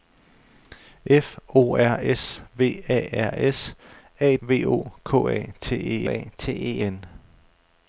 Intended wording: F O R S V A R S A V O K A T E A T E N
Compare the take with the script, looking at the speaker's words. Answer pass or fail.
pass